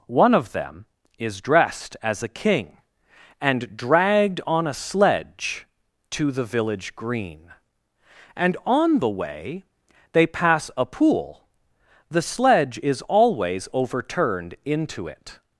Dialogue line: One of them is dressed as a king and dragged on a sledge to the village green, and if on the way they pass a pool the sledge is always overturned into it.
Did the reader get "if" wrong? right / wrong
wrong